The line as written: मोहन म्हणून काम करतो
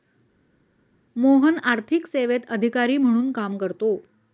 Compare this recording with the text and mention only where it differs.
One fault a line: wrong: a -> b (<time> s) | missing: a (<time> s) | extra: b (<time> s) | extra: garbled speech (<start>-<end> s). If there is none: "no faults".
extra: आर्थिक सेवेत अधिकारी (1.6 s)